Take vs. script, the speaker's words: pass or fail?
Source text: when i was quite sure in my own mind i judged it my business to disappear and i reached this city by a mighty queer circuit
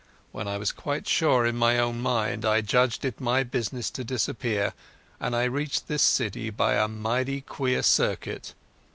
pass